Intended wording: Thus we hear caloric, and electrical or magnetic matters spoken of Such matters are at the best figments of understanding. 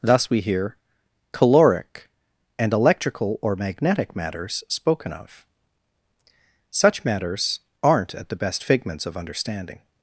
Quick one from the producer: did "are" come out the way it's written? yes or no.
no